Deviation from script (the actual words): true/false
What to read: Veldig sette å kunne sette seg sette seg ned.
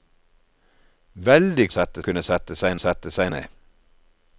false